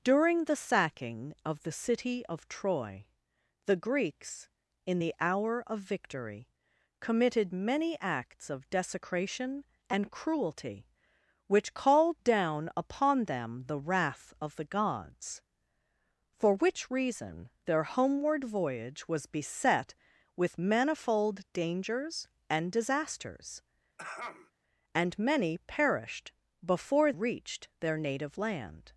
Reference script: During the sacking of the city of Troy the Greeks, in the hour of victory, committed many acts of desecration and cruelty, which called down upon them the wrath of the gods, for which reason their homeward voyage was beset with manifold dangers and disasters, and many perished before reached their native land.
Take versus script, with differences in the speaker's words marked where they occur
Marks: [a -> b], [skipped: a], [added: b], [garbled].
During the sacking of the city of Troy the Greeks, in the hour of victory, committed many acts of desecration and cruelty, which called down upon them the wrath of the gods, for which reason their homeward voyage was beset with manifold dangers and disasters, and many perished before reached their native land.